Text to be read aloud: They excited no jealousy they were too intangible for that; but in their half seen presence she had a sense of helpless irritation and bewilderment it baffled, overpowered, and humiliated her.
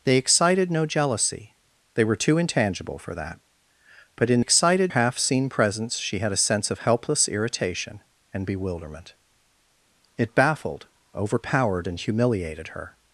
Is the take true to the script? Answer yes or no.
no